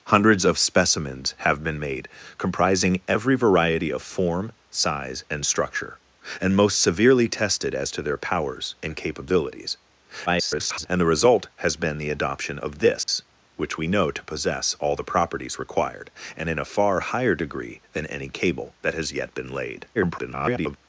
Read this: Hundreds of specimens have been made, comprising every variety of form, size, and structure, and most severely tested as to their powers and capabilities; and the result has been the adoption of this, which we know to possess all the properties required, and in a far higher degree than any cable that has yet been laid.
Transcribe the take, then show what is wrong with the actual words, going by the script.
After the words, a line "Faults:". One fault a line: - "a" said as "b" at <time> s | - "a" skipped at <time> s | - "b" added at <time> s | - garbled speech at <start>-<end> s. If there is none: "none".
Hundreds of specimens have been made, comprising every variety of form, size, and structure, and most severely tested as to their powers and capabilities; [garbled] and the result has been the adoption of this, which we know to possess all the properties required, and in a far higher degree than any cable that has yet been laid. [garbled]
Faults:
- garbled speech at 10.3-10.9 s
- garbled speech at 19.9-20.8 s